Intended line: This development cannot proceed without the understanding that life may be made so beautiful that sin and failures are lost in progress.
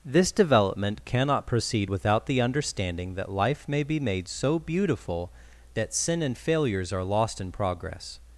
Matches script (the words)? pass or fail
pass